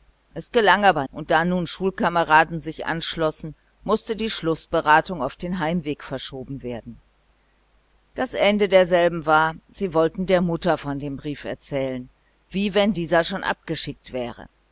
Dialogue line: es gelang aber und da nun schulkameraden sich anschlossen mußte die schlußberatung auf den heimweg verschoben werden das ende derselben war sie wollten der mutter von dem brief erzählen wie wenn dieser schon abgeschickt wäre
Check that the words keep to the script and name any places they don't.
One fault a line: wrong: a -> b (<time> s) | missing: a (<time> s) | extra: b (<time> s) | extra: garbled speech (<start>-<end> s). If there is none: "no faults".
no faults